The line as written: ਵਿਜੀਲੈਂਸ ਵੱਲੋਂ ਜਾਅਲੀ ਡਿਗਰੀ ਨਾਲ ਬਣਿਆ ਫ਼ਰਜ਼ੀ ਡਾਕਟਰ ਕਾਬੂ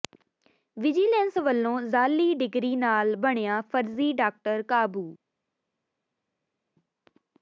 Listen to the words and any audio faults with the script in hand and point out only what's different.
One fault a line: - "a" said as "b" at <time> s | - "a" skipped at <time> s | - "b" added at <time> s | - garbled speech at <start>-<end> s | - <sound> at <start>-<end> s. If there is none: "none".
none